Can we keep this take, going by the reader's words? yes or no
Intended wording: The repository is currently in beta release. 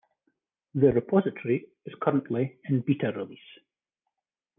yes